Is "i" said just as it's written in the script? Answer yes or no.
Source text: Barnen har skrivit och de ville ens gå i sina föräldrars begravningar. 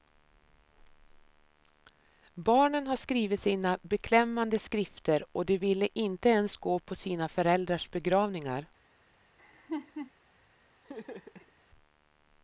no